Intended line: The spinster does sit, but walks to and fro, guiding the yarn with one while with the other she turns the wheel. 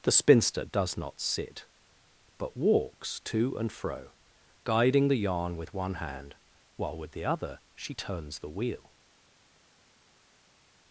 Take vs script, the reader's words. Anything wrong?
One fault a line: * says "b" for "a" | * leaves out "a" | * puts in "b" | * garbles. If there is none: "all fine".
* puts in "not"
* puts in "hand"